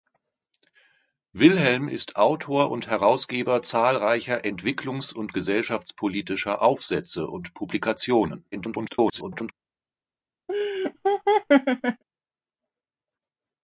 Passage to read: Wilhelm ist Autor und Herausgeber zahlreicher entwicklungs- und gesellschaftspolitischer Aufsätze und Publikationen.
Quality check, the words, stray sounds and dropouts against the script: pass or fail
fail